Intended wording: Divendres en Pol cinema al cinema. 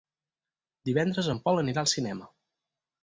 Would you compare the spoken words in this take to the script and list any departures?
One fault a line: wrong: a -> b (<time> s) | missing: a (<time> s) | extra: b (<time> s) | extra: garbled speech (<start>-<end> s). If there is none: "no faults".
wrong: cinema -> anirà (1.6 s)